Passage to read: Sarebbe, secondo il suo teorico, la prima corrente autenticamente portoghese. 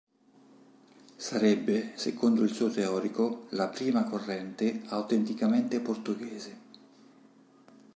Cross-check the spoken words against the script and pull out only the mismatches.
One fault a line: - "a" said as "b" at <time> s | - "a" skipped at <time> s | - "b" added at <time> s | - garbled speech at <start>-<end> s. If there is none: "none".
none